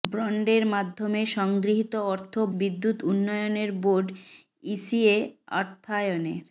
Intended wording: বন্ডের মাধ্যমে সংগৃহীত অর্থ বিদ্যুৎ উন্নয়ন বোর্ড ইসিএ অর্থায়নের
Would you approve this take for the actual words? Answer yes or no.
yes